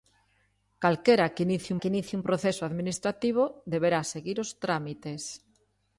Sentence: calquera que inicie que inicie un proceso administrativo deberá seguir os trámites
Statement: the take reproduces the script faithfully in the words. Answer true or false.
true